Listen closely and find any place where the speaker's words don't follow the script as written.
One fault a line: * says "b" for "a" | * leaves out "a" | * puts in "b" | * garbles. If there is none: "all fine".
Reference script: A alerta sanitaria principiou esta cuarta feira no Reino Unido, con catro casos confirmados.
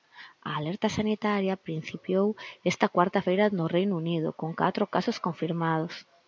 all fine